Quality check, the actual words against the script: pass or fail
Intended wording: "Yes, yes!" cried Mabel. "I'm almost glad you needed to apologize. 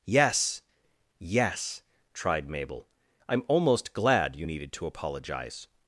fail